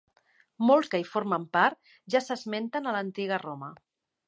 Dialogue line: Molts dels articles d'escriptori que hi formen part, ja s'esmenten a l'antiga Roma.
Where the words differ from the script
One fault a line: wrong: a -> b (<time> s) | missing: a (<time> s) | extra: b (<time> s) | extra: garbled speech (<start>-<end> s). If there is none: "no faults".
missing: dels articles d'escriptori (0.9 s)